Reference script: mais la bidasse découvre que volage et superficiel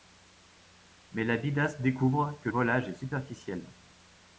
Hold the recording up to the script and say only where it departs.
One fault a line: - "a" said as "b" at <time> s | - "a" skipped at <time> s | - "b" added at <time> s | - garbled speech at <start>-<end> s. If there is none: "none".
none